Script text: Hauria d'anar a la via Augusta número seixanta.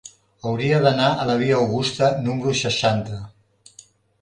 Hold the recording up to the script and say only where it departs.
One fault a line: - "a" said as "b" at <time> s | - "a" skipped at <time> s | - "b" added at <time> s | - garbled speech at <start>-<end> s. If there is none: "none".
none